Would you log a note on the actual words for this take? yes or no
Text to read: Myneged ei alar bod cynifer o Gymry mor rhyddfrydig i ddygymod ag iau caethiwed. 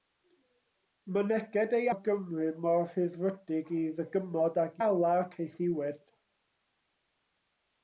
yes